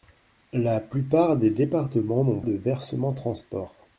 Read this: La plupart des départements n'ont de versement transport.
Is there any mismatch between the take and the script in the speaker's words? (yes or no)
no